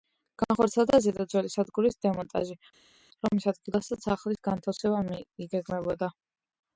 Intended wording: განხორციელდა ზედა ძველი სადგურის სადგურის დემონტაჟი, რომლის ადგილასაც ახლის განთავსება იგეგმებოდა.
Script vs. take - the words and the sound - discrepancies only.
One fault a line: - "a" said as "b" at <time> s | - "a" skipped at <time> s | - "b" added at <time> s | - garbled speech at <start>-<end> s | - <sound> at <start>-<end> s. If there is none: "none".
- "სადგურის" skipped at 2.0 s